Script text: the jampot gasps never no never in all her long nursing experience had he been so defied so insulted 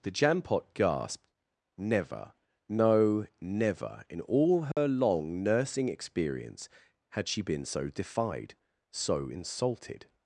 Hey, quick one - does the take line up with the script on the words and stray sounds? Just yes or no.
no